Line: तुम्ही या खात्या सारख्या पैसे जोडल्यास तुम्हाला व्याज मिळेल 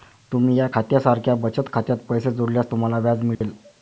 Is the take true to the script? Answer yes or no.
no